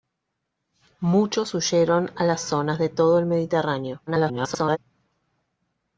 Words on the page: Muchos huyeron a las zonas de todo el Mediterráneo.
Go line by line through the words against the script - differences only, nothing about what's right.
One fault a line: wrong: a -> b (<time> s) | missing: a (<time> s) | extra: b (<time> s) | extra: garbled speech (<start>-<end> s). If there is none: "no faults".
extra: garbled speech (4.1-4.8 s)